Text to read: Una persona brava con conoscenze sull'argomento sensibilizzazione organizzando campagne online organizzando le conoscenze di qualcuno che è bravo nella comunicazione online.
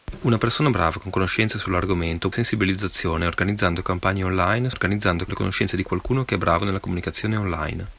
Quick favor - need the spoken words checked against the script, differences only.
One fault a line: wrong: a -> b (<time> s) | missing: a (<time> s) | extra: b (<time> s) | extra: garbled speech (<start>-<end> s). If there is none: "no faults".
no faults